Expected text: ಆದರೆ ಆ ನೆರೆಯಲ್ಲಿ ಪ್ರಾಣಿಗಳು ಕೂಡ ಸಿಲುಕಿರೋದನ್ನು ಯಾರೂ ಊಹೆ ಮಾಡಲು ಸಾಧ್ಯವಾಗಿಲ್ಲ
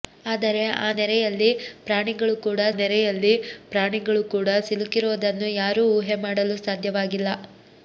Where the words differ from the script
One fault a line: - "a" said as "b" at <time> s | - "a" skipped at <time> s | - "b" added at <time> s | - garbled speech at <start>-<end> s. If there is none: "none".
- "ನೆರೆಯಲ್ಲಿ ಪ್ರಾಣಿಗಳು ಕೂಡ" added at 2.8 s